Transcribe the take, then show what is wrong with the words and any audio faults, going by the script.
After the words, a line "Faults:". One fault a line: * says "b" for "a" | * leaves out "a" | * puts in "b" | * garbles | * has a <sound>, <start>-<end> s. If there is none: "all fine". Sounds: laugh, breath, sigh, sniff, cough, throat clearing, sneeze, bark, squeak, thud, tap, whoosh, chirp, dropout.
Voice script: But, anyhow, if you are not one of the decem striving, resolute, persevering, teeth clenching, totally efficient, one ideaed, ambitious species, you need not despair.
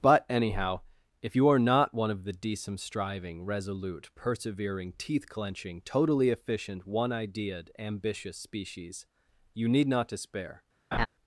But, anyhow, if you are not one of the decem striving, resolute, persevering, teeth clenching, totally efficient, one ideaed, ambitious species, you need not despair.
Faults:
* has a laugh, 10.9-11.1 s